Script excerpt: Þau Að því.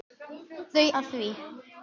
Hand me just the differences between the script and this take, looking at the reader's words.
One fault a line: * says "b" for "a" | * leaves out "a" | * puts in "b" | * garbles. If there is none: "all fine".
all fine